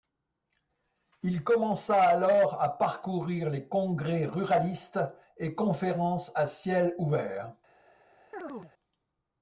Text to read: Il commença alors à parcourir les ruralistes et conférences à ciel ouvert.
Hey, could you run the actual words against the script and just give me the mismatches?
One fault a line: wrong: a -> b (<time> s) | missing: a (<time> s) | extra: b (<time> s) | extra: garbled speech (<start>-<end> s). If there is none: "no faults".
extra: congrès (3.7 s)